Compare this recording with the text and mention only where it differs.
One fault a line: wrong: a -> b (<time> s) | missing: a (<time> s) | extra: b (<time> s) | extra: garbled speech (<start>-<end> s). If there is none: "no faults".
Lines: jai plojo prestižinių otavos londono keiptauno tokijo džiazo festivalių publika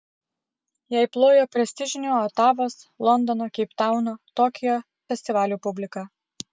missing: džiazo (4.8 s)